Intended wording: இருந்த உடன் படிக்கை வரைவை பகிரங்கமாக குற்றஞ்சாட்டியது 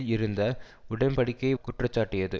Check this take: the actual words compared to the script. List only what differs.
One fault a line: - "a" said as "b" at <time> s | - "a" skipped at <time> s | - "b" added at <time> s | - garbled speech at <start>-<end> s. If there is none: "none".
- "வரைவை பகிரங்கமாக" skipped at 1.6 s